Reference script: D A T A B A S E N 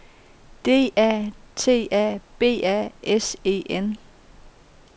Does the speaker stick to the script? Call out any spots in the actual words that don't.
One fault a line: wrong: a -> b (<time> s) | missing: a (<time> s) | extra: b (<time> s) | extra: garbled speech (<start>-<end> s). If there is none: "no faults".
no faults